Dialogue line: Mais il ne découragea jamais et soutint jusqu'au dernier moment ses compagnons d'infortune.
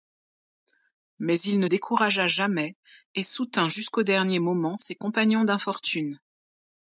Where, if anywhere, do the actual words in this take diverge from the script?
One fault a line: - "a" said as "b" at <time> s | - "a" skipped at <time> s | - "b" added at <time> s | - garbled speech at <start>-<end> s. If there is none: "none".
none